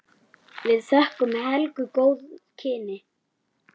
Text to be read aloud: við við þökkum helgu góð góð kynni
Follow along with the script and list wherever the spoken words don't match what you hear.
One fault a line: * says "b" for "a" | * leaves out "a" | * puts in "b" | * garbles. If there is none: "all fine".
* leaves out "við"
* leaves out "góð"